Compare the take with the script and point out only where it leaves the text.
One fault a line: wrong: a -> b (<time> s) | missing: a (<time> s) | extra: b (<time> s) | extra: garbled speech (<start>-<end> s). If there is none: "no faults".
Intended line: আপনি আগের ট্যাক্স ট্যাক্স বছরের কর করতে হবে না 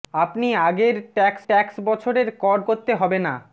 no faults